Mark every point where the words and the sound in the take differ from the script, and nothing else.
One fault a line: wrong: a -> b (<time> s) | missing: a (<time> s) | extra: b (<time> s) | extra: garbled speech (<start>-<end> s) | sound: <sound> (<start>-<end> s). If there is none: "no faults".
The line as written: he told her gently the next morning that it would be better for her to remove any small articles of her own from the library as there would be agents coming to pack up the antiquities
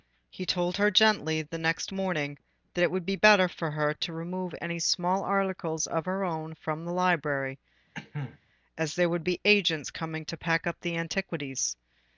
sound: cough (7.9-8.4 s)